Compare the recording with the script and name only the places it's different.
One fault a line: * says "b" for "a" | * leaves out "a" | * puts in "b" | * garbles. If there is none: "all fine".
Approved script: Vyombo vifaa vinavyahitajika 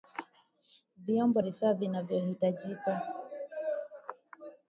all fine